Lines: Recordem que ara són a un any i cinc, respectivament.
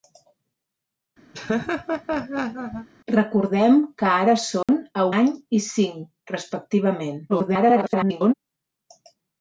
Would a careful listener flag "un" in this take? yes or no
yes